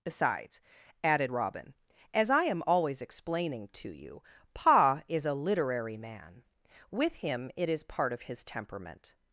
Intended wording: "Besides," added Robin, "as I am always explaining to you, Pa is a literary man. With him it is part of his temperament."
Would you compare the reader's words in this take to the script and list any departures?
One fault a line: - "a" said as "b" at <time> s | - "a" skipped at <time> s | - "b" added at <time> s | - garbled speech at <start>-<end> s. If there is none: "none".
none